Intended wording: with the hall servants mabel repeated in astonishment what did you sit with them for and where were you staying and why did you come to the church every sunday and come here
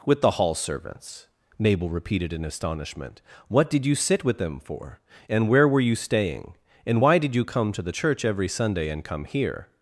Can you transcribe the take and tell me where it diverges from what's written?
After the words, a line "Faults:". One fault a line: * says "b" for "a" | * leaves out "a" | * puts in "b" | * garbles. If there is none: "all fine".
with the hall servants mabel repeated in astonishment what did you sit with them for and where were you staying and why did you come to the church every sunday and come here
Faults:
all fine